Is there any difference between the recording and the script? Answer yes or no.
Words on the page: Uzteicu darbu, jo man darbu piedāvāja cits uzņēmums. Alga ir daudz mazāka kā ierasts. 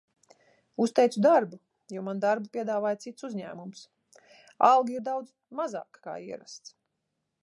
no